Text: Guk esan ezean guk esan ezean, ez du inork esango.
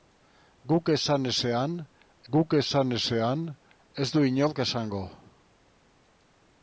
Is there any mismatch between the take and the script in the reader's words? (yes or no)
no